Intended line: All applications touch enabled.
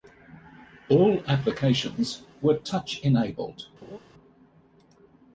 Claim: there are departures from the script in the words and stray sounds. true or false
true